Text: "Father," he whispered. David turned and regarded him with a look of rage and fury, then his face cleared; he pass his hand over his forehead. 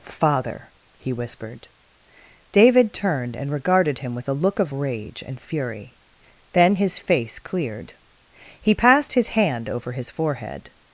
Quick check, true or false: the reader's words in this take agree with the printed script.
false